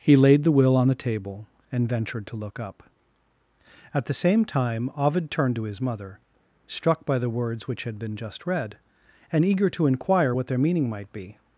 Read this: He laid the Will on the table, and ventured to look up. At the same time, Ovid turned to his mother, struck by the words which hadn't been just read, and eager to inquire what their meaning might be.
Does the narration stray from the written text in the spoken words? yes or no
yes